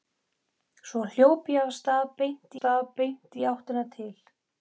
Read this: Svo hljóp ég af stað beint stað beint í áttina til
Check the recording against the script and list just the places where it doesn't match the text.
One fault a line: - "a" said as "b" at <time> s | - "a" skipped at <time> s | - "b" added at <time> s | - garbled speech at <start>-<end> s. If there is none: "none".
none